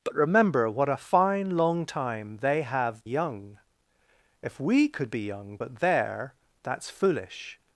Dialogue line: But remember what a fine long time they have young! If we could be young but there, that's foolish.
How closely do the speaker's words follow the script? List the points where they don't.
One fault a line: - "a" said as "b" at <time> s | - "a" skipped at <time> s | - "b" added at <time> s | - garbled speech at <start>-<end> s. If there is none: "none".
none